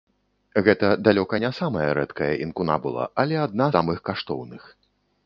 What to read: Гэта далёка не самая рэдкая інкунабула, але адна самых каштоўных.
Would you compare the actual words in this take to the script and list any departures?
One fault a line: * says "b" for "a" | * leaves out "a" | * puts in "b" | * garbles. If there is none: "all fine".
all fine